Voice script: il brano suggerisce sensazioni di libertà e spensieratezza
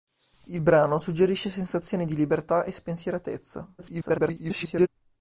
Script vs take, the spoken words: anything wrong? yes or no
yes